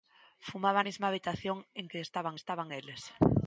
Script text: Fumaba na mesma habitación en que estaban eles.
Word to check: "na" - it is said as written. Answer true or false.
false